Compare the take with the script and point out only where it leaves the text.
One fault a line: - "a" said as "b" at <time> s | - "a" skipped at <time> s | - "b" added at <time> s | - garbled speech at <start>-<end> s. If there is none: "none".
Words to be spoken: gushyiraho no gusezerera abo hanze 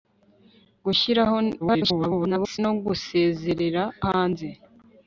- garbled speech at 1.6-2.6 s
- "abo" skipped at 3.8 s